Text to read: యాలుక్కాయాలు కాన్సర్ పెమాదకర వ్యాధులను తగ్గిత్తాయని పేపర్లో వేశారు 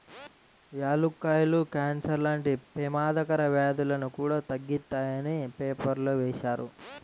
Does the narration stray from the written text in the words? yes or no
yes